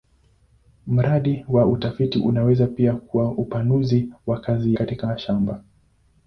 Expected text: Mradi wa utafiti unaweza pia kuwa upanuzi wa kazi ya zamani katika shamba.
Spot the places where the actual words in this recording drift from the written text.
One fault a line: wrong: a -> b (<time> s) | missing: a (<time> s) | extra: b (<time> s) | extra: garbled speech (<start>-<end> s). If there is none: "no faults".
missing: ya zamani (4.8 s)